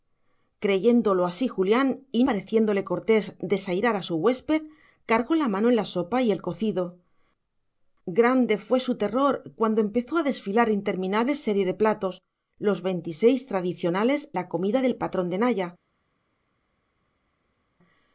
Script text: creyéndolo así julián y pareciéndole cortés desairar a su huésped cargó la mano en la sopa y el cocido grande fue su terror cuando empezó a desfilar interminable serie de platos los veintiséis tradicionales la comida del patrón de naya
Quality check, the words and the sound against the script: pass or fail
pass